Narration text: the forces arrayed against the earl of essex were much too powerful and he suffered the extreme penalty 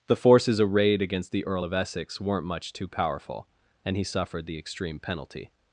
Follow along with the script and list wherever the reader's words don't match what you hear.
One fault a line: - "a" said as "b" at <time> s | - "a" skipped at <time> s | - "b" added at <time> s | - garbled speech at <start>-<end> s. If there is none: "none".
- "were" said as "weren't" at 2.2 s